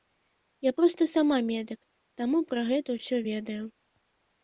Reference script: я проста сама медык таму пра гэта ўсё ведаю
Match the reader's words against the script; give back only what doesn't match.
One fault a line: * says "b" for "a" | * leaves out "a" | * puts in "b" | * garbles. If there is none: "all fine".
all fine